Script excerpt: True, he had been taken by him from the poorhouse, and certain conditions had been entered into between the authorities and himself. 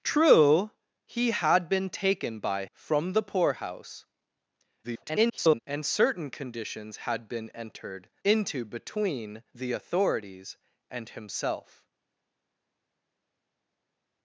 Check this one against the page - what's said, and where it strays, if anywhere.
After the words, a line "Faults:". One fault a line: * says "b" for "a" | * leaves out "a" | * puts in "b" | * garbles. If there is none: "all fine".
True, he had been taken by from the poorhouse, [garbled] and certain conditions had been entered into between the authorities and himself.
Faults:
* leaves out "him"
* garbles